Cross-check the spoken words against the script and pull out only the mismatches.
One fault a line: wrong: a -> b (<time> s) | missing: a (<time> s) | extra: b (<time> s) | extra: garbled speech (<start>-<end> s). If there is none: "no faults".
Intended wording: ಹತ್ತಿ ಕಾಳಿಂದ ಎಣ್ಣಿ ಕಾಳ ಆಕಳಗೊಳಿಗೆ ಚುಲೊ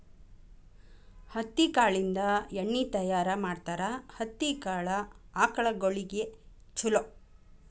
extra: ತಯಾರ ಮಾಡ್ತಾರ ಹತ್ತಿ (2.8 s)